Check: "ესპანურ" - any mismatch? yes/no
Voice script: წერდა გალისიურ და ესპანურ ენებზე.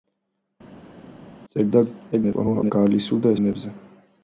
yes